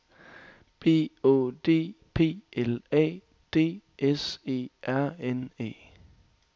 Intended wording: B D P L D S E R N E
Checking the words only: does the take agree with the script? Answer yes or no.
no